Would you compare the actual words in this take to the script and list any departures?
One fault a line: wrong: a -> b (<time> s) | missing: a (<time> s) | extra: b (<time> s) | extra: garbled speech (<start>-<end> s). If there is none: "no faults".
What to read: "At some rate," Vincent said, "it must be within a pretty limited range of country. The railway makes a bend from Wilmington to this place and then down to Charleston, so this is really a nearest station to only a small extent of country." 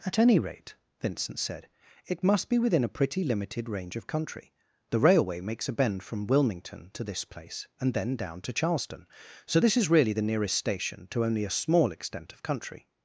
wrong: some -> any (0.2 s)
wrong: a -> the (10.1 s)